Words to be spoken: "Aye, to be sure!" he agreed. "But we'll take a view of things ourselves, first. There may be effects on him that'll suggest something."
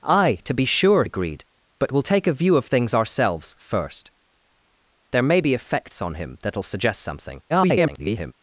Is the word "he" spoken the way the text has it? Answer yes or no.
no